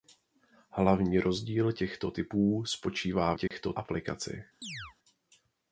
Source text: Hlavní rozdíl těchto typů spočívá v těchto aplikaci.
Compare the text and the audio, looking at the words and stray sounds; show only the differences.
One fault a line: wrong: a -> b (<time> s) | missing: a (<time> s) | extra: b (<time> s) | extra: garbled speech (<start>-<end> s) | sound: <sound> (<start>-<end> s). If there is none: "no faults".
sound: dropout (3.5-3.5 s)
sound: chirp (4.6-5.0 s)